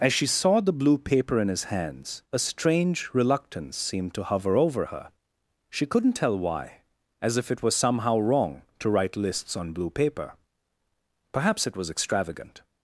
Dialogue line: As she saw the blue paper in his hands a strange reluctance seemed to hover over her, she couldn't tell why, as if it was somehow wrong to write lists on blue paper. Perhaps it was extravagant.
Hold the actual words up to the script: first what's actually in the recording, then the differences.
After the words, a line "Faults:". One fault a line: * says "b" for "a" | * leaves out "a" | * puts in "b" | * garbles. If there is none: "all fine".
As she saw the blue paper in his hands a strange reluctance seemed to hover over her, she couldn't tell why, as if it was somehow wrong to write lists on blue paper. Perhaps it was extravagant.
Faults:
all fine